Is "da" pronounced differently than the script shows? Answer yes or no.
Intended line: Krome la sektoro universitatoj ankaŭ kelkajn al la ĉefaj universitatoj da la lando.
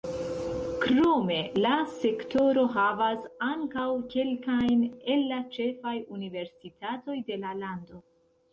yes